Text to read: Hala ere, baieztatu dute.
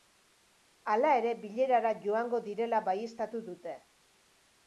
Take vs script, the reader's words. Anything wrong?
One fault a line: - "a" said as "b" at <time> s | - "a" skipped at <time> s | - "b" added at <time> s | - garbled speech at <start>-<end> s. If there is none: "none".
- "bilerara joango direla" added at 1.4 s